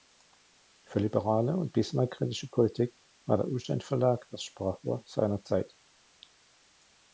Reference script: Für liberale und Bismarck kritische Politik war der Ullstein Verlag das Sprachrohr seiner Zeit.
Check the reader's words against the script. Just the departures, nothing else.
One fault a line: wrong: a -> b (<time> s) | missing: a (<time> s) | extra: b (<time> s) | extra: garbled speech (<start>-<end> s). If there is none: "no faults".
no faults